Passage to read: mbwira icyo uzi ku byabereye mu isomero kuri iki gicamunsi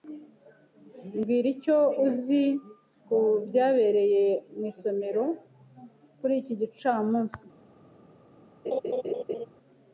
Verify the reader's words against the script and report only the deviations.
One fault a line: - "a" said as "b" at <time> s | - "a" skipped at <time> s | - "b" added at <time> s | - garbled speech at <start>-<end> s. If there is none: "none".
none